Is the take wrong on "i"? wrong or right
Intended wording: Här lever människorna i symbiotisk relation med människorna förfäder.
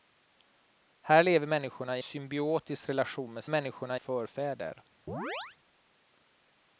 right